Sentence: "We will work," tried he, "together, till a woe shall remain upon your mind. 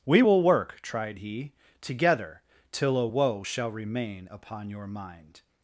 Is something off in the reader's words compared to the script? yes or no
no